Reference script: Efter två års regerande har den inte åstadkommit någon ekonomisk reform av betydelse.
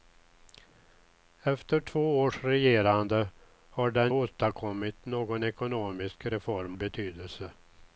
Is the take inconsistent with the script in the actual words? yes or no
yes